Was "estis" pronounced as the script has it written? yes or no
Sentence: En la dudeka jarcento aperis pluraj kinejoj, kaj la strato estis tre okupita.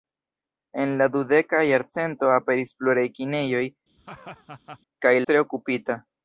no